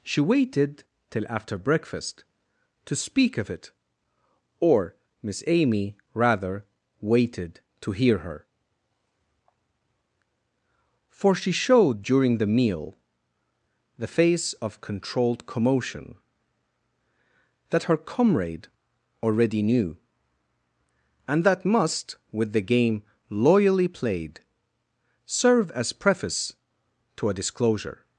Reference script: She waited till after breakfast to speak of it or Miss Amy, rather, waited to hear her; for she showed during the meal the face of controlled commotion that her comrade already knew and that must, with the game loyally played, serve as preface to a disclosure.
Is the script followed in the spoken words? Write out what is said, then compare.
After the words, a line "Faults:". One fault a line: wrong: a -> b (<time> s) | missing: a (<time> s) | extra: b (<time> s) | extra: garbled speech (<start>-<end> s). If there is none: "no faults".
She waited till after breakfast to speak of it or Miss Amy, rather, waited to hear her; for she showed during the meal the face of controlled commotion that her comrade already knew and that must, with the game loyally played, serve as preface to a disclosure.
Faults:
no faults